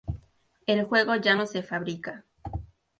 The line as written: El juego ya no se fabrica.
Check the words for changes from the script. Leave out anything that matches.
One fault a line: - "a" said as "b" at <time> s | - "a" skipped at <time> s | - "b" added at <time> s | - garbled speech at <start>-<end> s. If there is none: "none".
none